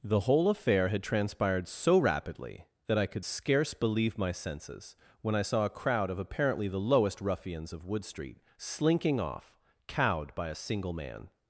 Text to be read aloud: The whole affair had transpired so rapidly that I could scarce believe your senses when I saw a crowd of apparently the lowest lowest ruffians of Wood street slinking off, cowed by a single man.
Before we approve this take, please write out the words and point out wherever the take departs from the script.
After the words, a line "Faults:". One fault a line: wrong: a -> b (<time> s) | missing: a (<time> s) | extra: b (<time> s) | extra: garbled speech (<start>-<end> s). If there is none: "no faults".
The whole affair had transpired so rapidly that I could scarce believe my senses when I saw a crowd of apparently the lowest ruffians of Wood street slinking off, cowed by a single man.
Faults:
wrong: your -> my (4.2 s)
missing: lowest (7.2 s)